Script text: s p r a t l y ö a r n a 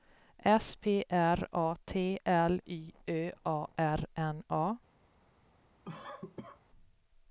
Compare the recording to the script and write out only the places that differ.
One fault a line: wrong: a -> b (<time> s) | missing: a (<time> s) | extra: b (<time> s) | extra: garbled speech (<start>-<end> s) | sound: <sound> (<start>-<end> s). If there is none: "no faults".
sound: cough (5.8-6.6 s)